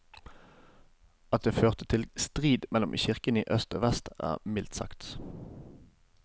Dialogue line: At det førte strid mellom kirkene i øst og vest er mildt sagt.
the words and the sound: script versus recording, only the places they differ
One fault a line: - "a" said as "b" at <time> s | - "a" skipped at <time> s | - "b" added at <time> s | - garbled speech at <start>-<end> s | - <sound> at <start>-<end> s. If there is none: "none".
- "til" added at 1.9 s